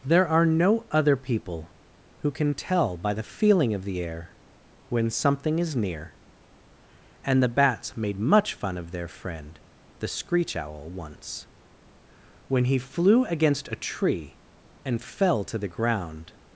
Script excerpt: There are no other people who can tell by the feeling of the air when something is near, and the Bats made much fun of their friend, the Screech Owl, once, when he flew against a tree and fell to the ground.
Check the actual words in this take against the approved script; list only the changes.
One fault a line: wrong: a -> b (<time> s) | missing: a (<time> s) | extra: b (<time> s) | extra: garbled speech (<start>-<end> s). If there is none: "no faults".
no faults